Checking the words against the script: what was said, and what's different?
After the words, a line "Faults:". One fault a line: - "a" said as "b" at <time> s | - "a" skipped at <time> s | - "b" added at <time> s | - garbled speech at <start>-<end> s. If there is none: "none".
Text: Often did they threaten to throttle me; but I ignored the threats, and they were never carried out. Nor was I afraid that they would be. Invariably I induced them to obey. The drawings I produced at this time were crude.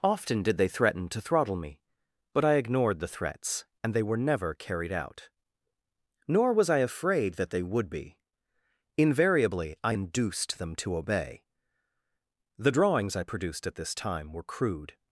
Often did they threaten to throttle me; but I ignored the threats, and they were never carried out. Nor was I afraid that they would be. Invariably I induced them to obey. The drawings I produced at this time were crude.
Faults:
none